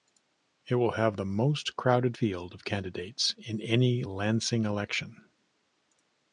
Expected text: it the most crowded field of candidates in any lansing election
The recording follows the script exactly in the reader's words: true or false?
false